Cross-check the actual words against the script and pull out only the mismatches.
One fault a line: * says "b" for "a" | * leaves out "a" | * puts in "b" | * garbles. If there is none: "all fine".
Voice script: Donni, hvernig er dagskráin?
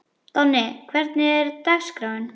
all fine